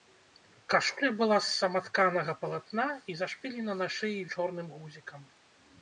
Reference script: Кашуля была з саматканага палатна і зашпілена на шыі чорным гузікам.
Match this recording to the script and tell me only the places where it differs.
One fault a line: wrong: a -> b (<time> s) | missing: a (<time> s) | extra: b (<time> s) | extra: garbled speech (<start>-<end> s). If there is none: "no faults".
no faults